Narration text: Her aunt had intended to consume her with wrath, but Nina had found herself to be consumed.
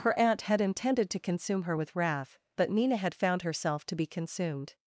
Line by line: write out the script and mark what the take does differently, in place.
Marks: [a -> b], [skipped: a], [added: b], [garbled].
Her aunt had intended to consume her with wrath, but Nina had found herself to be consumed.